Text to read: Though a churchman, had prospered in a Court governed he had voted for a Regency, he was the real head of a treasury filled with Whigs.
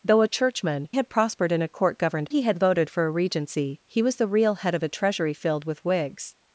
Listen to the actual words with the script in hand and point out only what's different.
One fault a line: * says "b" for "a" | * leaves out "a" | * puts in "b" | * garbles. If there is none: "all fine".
all fine